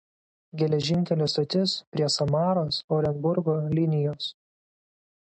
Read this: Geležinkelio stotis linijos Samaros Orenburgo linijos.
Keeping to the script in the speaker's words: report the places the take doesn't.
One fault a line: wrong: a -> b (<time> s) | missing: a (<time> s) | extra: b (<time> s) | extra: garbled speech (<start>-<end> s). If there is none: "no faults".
wrong: linijos -> prie (1.9 s)